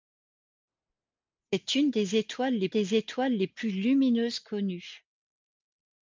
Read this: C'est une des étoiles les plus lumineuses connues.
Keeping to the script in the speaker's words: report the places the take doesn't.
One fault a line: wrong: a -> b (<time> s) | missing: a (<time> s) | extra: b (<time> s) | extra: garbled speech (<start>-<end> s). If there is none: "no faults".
extra: des étoiles les (2.7 s)